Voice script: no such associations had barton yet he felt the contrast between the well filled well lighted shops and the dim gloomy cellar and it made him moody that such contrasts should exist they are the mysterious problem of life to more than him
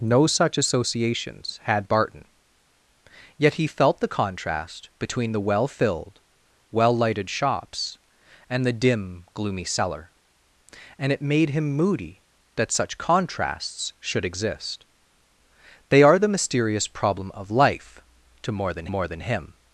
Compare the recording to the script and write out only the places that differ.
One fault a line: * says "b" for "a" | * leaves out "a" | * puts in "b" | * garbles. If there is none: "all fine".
* puts in "more than"